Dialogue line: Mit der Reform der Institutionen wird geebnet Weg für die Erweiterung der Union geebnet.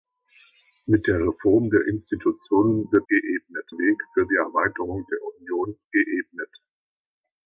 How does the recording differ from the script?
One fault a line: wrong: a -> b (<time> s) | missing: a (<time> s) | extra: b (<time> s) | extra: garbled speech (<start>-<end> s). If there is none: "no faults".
no faults